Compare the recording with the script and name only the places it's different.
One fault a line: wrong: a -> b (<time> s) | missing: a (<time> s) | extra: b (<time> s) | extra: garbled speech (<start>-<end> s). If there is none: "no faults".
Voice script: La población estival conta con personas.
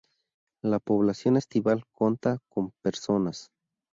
no faults